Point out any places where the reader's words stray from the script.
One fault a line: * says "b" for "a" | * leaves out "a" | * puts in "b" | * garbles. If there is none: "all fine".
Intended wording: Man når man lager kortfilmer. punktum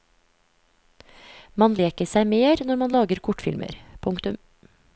* puts in "leker seg mer"